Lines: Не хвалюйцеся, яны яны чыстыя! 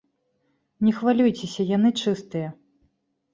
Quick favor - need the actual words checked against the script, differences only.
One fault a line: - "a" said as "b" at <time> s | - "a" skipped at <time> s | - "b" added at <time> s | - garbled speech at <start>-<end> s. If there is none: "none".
- "яны" skipped at 1.9 s